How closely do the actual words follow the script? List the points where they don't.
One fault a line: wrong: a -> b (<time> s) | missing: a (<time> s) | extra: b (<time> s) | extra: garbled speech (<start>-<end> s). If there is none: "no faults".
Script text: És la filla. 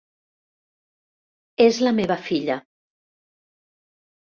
extra: meva (2.0 s)